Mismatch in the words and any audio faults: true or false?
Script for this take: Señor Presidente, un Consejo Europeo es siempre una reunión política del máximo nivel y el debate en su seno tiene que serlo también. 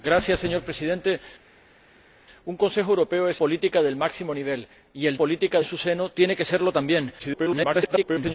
true